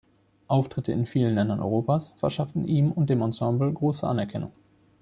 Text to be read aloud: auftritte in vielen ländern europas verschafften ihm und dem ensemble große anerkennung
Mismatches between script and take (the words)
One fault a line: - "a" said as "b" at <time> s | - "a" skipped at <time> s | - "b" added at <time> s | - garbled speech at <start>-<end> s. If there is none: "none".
none